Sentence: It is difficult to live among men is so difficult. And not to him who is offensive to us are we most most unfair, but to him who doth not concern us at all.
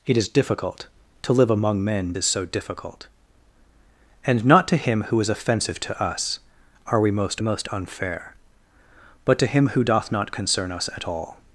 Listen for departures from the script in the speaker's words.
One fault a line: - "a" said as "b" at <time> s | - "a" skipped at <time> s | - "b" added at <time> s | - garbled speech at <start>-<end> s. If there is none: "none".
none